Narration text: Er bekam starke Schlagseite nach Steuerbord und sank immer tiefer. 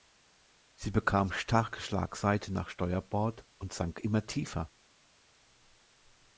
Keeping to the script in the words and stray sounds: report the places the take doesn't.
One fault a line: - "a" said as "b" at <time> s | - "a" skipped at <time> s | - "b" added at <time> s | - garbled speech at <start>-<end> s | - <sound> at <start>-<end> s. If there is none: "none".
- "Er" said as "Sie" at 0.8 s